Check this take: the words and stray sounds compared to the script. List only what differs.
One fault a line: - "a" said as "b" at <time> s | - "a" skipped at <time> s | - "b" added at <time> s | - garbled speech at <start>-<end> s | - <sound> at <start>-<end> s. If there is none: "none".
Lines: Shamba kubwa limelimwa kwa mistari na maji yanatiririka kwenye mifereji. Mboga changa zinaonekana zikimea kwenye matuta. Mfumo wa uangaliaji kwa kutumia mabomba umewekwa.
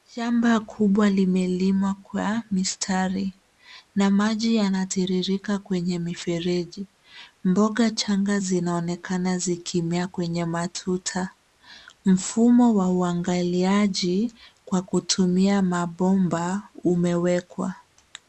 none